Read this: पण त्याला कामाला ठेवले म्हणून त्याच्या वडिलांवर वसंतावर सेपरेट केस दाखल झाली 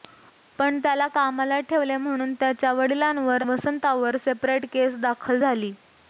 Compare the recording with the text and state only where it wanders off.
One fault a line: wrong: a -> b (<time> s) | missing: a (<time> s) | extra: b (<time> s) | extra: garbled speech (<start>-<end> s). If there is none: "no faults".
no faults